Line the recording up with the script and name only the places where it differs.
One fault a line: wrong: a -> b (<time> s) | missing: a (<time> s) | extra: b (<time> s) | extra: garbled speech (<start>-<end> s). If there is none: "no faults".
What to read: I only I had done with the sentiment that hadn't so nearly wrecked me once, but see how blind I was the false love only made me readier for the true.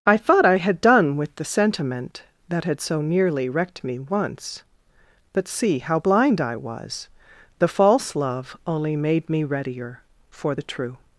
wrong: only -> thought (0.2 s)
wrong: hadn't -> had (2.6 s)